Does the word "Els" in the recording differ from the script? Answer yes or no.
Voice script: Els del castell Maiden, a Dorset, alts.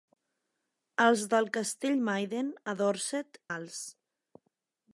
no